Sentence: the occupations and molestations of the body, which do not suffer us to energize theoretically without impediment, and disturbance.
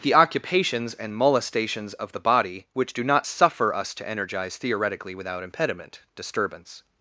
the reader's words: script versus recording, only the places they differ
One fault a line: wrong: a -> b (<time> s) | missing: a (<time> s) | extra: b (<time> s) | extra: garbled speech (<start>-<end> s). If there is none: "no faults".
missing: and (6.0 s)